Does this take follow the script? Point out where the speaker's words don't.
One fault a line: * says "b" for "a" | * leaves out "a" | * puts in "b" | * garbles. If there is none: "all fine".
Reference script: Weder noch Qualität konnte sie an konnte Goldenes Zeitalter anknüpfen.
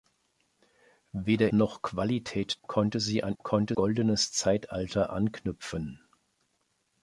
all fine